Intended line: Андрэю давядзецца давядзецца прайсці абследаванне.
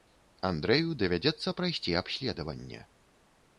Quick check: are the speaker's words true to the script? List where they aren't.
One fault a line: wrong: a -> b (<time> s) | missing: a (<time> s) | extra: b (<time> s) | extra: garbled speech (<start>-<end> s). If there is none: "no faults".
missing: давядзецца (1.5 s)